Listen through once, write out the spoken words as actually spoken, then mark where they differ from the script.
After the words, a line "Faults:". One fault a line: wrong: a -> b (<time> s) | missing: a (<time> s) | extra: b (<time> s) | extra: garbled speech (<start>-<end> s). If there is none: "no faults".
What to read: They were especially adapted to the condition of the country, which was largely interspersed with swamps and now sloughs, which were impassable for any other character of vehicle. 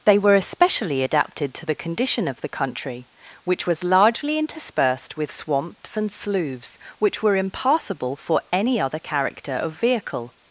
They were especially adapted to the condition of the country, which was largely interspersed with swamps and sloughs, which were impassable for any other character of vehicle.
Faults:
missing: now (6.1 s)